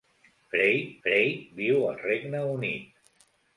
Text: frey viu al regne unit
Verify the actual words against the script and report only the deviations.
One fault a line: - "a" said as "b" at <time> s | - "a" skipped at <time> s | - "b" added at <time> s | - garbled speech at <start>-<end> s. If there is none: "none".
- "frey" added at 1.1 s